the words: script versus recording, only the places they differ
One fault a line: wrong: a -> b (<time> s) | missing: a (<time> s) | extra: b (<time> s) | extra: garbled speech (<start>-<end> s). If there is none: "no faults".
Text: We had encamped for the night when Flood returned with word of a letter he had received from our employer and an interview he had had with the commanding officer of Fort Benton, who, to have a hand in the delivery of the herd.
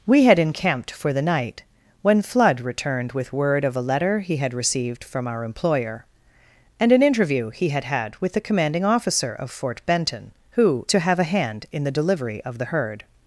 no faults